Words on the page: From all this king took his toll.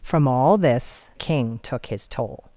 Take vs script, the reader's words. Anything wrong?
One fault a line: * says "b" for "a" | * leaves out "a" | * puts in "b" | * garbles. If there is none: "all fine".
all fine